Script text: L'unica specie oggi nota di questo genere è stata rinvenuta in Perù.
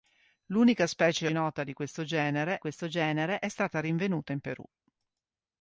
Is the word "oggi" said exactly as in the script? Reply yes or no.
no